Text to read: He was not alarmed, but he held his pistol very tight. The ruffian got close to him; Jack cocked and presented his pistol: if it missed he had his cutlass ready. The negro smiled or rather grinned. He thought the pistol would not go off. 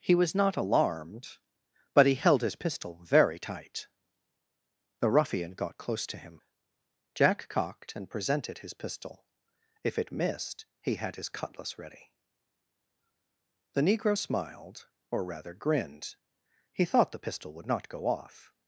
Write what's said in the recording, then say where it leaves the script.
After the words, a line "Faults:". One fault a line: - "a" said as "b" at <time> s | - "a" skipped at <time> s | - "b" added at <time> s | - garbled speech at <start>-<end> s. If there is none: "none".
He was not alarmed, but he held his pistol very tight. The ruffian got close to him; Jack cocked and presented his pistol: if it missed he had his cutlass ready. The negro smiled or rather grinned. He thought the pistol would not go off.
Faults:
none